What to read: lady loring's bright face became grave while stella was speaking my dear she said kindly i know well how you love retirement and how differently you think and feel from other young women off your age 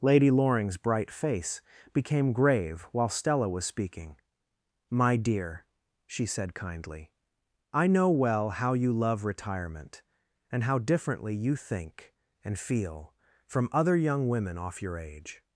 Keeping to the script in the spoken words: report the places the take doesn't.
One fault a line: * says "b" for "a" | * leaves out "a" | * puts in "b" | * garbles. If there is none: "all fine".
all fine